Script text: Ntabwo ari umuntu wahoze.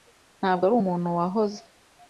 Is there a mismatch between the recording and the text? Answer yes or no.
no